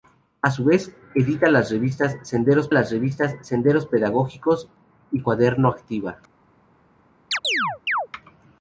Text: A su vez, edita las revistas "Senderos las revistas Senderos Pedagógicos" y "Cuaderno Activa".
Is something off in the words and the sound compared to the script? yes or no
yes